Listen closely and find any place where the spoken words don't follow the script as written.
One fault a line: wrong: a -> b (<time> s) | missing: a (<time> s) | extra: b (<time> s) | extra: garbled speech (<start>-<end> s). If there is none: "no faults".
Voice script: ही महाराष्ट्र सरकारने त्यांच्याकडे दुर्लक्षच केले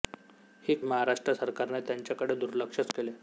no faults